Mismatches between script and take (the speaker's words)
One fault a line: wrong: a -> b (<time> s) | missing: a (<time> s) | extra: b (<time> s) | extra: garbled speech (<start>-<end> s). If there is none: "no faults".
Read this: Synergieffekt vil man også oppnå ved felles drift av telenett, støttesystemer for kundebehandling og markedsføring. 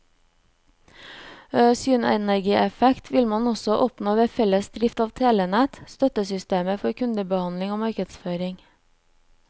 no faults